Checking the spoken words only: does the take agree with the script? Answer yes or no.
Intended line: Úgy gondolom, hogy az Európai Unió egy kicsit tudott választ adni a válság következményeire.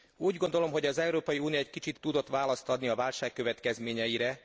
yes